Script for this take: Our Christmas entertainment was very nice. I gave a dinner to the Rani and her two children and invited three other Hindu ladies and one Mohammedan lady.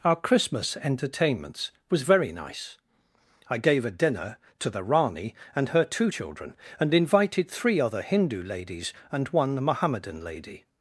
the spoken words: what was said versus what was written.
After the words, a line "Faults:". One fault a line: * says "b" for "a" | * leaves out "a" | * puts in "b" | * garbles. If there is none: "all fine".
Our Christmas entertainments was very nice. I gave a dinner to the Rani and her two children and invited three other Hindu ladies and one Mohammedan lady.
Faults:
* says "entertainments" for "entertainment"